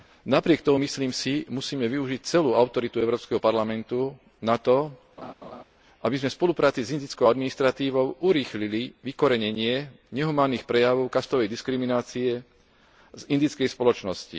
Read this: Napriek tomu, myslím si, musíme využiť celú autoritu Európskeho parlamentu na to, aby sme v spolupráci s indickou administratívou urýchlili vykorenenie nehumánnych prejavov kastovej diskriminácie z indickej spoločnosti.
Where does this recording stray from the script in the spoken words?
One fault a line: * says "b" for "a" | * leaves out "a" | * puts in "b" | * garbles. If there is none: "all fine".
all fine